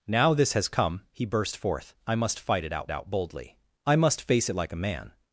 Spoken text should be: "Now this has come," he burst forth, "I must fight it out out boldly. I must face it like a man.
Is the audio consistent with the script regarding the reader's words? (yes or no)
yes